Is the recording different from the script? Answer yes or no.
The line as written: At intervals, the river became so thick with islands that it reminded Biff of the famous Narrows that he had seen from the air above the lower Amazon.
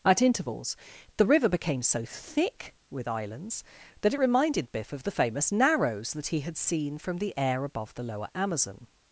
no